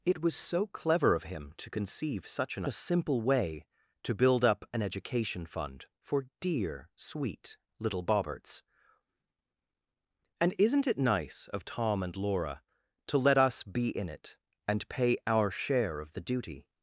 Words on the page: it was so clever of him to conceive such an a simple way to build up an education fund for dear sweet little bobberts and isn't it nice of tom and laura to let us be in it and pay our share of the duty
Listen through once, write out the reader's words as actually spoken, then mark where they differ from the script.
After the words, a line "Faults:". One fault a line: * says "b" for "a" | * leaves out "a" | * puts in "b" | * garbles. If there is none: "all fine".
it was so clever of him to conceive such an a simple way to build up an education fund for dear sweet little bobberts and isn't it nice of tom and laura to let us be in it and pay our share of the duty
Faults:
all fine